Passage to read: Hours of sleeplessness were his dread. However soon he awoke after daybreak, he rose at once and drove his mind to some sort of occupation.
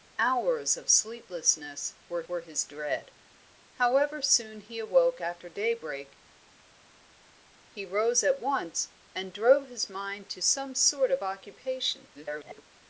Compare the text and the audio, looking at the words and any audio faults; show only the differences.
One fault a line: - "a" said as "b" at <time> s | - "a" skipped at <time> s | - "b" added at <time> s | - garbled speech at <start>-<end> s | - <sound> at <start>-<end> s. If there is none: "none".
- "were" added at 2.3 s
- garbled speech at 12.1-12.6 s